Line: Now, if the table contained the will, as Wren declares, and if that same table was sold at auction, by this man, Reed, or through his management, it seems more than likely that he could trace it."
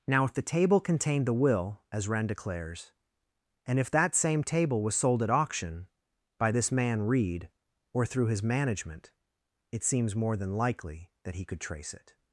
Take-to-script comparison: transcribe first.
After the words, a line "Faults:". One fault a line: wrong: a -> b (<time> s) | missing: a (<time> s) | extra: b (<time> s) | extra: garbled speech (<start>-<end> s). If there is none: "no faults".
Now, if the table contained the will, as Wren declares, and if that same table was sold at auction, by this man, Reed, or through his management, it seems more than likely that he could trace it."
Faults:
no faults